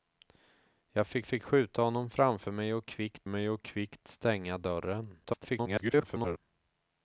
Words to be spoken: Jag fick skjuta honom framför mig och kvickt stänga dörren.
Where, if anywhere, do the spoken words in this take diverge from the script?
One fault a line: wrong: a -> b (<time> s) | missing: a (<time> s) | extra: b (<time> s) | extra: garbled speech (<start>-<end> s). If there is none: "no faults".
extra: fick (1.2 s)
extra: mig och kvickt (3.3 s)
extra: garbled speech (5.2-6.4 s)